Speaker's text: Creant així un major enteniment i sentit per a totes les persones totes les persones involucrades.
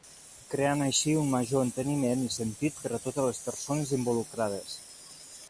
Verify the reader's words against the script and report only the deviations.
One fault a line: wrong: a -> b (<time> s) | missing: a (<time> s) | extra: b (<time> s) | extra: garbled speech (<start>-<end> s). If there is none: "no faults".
missing: totes les persones (3.9 s)